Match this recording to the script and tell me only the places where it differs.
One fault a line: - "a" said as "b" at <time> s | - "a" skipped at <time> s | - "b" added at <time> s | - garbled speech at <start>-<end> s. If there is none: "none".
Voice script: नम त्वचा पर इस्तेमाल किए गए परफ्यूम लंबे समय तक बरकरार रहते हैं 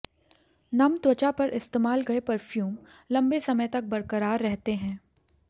- "किए" skipped at 2.0 s